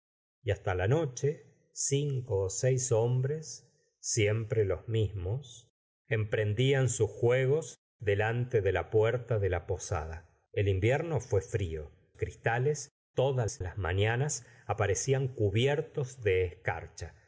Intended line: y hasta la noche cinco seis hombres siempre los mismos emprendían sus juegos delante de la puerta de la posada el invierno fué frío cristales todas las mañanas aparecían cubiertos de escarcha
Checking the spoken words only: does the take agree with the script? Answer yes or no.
yes